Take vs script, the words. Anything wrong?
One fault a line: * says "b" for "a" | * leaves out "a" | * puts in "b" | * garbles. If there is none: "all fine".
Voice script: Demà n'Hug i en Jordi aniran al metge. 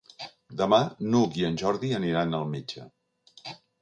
all fine